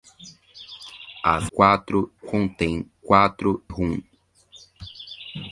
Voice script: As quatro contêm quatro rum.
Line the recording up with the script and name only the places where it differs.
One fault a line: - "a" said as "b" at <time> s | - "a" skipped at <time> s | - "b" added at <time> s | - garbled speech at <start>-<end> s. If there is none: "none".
none